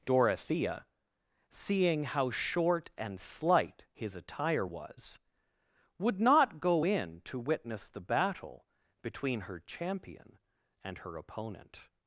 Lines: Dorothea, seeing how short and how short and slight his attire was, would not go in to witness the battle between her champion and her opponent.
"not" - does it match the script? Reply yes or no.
yes